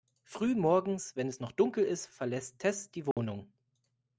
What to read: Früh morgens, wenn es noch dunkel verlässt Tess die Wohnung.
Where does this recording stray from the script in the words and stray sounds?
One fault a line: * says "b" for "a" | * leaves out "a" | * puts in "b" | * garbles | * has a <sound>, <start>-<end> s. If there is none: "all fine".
* puts in "ist"
* has a dropout, 3.1-3.2 s